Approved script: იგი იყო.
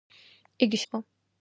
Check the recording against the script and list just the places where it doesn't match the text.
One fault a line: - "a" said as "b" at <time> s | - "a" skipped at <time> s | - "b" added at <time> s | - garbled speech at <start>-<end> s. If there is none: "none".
none